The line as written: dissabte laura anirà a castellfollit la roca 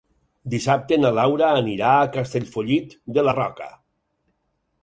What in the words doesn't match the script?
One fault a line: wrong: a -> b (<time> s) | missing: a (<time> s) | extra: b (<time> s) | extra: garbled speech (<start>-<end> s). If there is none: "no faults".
extra: na (1.0 s)
extra: de (3.2 s)